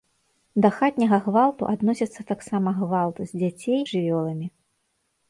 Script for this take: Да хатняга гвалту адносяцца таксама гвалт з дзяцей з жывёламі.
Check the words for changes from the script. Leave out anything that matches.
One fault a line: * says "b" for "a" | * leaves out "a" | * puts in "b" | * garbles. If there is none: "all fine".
all fine